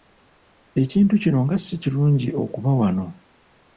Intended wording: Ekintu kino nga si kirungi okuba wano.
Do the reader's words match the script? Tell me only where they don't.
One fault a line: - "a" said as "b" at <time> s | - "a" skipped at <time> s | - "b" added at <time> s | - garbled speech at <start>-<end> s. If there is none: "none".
none